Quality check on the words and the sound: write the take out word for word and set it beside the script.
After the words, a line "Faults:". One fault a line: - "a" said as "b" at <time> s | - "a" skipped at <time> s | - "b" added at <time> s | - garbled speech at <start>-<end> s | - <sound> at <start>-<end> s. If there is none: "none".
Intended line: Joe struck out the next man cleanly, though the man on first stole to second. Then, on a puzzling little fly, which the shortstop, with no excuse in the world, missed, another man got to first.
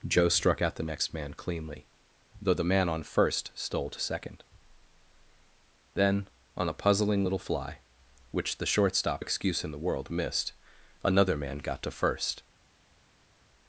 Joe struck out the next man cleanly, though the man on first stole to second. Then, on a puzzling little fly, which the shortstop, excuse in the world, missed, another man got to first.
Faults:
- "with no" skipped at 9.2 s